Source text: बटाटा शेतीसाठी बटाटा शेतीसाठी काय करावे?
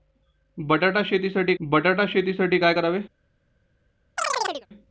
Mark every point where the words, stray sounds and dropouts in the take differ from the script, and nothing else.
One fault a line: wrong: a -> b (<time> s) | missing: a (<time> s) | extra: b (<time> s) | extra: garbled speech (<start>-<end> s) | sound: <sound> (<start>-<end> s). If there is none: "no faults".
sound: chirp (4.2-4.7 s)